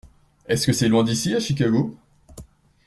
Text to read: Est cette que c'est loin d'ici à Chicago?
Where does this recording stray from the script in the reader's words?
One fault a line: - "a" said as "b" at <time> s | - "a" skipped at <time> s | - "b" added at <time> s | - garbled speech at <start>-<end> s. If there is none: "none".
- "cette" said as "ce" at 0.6 s